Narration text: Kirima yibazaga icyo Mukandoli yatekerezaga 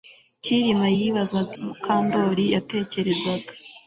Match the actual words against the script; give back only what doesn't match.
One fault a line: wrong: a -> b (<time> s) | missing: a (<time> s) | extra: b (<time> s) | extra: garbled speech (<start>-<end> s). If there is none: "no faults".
missing: icyo (1.5 s)